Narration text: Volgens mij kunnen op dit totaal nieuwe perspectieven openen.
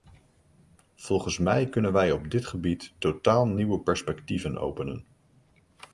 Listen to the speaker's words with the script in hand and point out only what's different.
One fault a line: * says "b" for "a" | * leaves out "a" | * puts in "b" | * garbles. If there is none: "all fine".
* puts in "wij"
* puts in "gebied"